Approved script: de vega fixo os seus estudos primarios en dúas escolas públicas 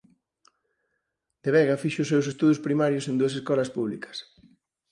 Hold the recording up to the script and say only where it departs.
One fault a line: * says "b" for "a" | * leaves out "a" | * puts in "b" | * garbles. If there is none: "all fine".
all fine